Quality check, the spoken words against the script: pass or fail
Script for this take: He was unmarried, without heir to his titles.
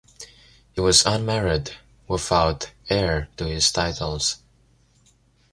pass